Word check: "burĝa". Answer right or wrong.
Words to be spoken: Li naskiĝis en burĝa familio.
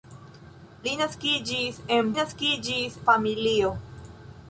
wrong